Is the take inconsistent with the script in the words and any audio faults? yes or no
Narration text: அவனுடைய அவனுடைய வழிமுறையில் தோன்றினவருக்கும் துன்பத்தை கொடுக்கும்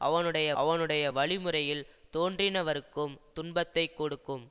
no